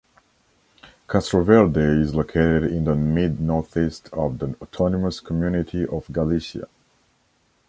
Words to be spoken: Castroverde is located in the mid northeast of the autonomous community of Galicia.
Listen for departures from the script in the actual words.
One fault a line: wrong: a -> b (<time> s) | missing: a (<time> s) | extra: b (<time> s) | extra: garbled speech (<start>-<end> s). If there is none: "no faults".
no faults